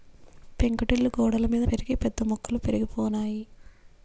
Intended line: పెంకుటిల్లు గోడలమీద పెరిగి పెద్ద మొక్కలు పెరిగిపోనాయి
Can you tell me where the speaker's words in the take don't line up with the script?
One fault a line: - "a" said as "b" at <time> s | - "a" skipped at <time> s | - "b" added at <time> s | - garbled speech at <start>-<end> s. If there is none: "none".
none